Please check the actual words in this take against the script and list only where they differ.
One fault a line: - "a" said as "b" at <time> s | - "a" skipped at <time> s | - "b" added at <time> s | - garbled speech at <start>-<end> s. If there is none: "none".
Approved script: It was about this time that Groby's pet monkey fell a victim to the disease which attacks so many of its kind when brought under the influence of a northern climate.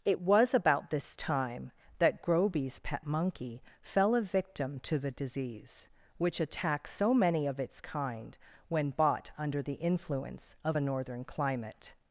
- "brought" said as "bought" at 8.9 s